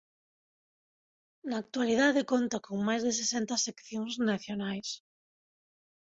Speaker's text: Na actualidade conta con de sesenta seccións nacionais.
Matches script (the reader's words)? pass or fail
fail